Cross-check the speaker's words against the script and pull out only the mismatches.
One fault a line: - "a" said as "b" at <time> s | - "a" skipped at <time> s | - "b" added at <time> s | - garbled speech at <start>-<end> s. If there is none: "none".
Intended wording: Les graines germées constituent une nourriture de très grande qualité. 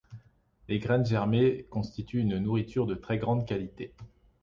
none